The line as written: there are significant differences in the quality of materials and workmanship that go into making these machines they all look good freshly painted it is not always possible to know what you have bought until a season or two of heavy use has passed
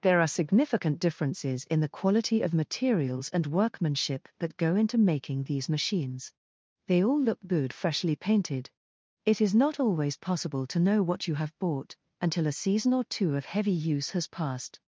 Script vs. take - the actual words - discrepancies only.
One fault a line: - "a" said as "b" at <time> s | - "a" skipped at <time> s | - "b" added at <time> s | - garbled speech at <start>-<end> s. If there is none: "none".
none